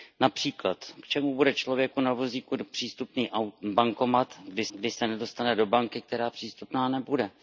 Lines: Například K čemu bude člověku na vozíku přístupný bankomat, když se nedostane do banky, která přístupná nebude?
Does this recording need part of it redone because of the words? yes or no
yes